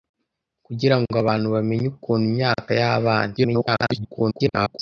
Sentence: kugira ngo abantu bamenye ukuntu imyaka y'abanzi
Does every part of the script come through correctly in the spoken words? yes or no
no